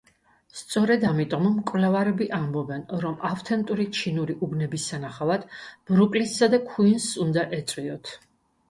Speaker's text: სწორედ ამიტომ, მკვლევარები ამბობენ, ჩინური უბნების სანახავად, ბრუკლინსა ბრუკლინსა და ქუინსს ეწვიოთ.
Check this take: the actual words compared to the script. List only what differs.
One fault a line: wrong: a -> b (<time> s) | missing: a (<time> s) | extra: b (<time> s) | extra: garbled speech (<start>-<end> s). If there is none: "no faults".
extra: რომ ავთენტური (3.1 s)
missing: ბრუკლინსა (6.5 s)
extra: უნდა (7.3 s)